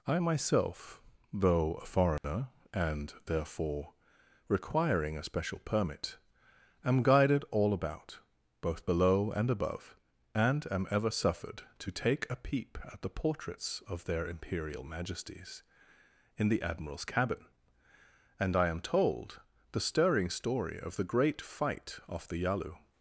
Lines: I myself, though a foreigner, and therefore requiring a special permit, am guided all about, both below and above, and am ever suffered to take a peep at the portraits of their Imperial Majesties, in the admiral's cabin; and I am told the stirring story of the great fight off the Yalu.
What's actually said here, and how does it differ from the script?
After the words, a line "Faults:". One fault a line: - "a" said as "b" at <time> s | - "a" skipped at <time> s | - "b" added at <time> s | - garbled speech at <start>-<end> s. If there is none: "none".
I myself, though a foreigner, and therefore requiring a special permit, am guided all about, both below and above, and am ever suffered to take a peep at the portraits of their Imperial Majesties, in the admiral's cabin; and I am told the stirring story of the great fight off the Yalu.
Faults:
none